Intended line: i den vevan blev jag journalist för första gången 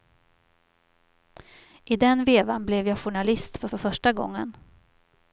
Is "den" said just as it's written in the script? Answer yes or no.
yes